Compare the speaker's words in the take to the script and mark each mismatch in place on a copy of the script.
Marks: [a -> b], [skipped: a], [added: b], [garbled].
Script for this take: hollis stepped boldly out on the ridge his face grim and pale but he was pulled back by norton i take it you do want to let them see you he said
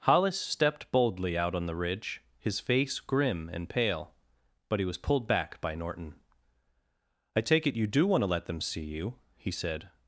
hollis stepped boldly out on the ridge his face grim and pale but he was pulled back by norton i take it you do want to let them see you he said